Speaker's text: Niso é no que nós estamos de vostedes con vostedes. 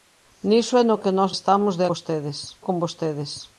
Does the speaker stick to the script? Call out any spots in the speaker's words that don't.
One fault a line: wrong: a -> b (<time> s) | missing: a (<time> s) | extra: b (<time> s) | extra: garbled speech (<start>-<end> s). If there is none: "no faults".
no faults